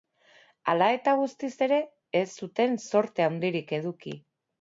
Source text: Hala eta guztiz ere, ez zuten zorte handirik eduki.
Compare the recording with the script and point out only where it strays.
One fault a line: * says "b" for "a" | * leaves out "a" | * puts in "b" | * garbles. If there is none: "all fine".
all fine